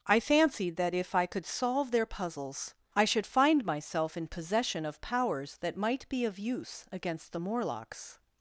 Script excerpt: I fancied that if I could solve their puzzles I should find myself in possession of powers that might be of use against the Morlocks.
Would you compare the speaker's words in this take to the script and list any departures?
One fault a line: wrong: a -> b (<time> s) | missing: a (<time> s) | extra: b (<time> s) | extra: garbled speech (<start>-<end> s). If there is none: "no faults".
no faults